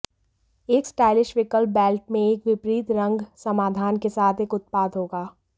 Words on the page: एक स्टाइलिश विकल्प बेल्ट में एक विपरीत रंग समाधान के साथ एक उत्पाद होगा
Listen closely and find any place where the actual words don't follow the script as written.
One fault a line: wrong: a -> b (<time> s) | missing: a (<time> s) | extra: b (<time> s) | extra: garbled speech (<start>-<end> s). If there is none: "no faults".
no faults